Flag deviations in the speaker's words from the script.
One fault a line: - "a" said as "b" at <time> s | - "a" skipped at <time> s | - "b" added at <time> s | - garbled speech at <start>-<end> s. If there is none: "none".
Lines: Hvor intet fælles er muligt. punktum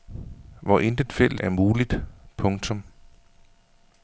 none